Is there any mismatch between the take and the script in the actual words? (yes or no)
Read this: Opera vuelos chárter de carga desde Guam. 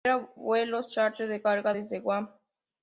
no